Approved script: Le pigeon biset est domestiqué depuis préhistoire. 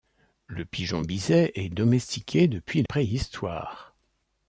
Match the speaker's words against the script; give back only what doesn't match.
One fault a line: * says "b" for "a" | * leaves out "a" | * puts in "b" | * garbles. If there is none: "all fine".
all fine